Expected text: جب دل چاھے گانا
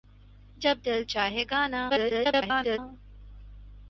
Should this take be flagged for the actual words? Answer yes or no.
yes